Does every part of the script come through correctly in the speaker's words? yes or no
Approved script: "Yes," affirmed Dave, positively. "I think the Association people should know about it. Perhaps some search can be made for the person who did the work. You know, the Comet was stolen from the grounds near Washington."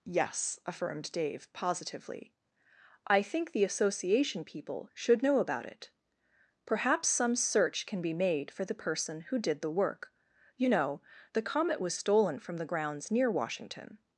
yes